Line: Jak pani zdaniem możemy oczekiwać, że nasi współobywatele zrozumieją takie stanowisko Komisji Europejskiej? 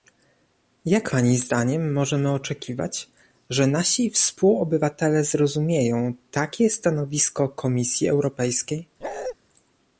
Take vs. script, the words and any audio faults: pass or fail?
fail